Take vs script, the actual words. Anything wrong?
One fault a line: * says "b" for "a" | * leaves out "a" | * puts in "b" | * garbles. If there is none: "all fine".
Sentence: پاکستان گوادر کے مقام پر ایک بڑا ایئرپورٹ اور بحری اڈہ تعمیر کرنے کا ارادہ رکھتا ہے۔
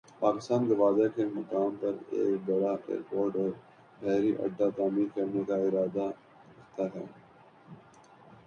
all fine